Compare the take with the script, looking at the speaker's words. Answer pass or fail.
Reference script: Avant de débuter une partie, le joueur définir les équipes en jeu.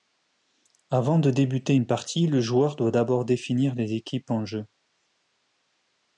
fail